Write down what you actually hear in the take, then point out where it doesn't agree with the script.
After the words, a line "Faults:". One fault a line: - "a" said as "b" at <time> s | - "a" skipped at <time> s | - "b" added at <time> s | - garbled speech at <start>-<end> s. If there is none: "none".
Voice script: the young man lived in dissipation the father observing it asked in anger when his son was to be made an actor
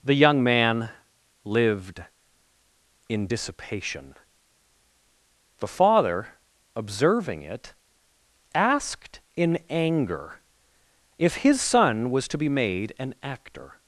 the young man lived in dissipation the father observing it asked in anger if his son was to be made an actor
Faults:
- "when" said as "if" at 11.2 s